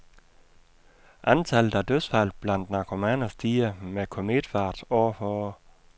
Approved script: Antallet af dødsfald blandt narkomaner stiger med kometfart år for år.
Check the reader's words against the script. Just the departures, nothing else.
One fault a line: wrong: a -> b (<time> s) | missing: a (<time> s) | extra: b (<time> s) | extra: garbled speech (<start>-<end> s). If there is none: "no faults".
no faults